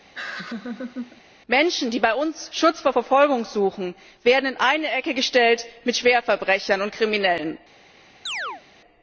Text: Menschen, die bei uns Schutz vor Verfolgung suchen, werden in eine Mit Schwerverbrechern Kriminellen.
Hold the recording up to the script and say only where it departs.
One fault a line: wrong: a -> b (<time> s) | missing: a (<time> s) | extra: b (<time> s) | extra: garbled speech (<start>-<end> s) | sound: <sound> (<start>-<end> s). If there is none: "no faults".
sound: laugh (0.1-1.2 s)
extra: Ecke gestellt (4.9 s)
extra: und (6.8 s)
sound: chirp (8.3-8.6 s)